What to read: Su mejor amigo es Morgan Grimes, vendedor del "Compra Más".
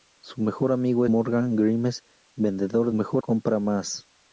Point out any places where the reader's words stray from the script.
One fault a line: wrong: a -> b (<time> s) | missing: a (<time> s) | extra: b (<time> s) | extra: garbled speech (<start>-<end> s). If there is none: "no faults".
missing: es (1.1 s)
wrong: del -> mejor (2.9 s)